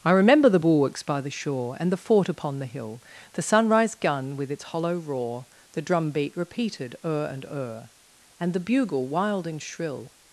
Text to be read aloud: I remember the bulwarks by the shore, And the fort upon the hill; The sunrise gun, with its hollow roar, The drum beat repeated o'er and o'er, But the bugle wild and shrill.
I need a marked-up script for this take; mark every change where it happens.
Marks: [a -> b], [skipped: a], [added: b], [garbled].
I remember the bulwarks by the shore, And the fort upon the hill; The sunrise gun, with its hollow roar, The drum beat repeated o'er and o'er, [But -> And] the bugle wild and shrill.